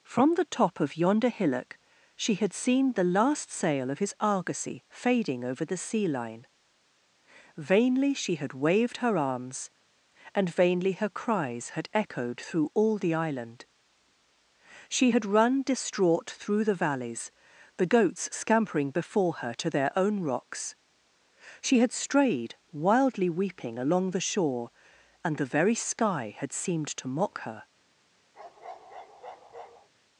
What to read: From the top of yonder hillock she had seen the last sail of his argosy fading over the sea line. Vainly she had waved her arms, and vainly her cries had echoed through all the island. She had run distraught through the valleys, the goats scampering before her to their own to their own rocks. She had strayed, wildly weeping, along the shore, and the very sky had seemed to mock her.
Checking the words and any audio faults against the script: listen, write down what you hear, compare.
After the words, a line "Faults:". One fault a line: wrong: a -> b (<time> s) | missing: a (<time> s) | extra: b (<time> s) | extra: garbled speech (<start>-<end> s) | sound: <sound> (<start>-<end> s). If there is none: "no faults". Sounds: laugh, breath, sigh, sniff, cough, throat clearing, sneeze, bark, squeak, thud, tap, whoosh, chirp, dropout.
From the top of yonder hillock she had seen the last sail of his argosy fading over the sea line. Vainly she had waved her arms, and vainly her cries had echoed through all the island. She had run distraught through the valleys, the goats scampering before her to their own rocks. She had strayed, wildly weeping, along the shore, and the very sky had seemed to mock her.
Faults:
missing: to their own (20.2 s)
sound: bark (28.3-29.9 s)